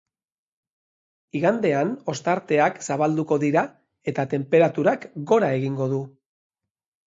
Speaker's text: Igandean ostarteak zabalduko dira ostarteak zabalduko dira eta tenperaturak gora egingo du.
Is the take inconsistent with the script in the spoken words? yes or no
yes